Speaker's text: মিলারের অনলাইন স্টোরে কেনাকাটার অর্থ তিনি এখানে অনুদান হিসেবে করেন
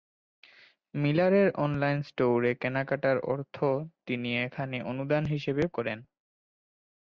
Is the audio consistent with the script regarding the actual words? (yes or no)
yes